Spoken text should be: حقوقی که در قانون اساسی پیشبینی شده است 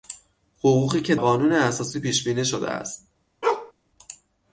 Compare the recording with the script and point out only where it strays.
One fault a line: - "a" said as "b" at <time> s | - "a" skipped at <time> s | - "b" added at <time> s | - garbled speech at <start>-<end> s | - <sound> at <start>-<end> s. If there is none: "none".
- "در" skipped at 1.1 s
- bark at 3.4-3.7 s